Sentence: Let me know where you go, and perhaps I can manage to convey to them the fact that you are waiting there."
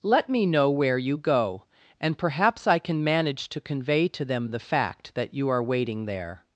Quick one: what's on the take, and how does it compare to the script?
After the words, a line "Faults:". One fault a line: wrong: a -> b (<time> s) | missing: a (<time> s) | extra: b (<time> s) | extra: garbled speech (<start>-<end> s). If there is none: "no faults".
Let me know where you go, and perhaps I can manage to convey to them the fact that you are waiting there."
Faults:
no faults